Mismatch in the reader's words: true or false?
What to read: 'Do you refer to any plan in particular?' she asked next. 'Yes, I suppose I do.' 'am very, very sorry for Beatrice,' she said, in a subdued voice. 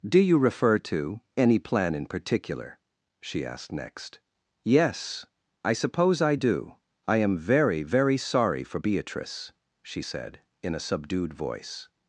true